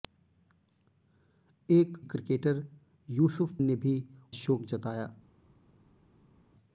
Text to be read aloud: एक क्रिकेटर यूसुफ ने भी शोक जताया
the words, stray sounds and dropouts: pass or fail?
pass